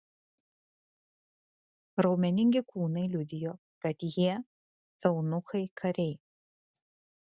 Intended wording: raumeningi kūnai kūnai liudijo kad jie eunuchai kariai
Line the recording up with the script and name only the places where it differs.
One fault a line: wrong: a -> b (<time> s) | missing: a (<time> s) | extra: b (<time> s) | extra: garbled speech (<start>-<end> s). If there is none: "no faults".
missing: kūnai (3.0 s)